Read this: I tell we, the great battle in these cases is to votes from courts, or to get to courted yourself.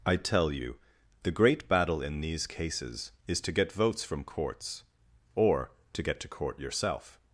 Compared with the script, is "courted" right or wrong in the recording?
wrong